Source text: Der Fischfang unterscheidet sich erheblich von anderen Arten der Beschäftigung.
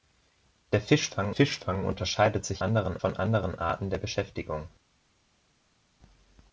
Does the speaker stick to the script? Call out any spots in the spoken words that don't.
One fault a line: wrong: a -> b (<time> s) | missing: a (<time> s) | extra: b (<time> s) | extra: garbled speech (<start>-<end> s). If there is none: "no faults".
extra: Fischfang (1.3 s)
wrong: erheblich -> anderen (2.6 s)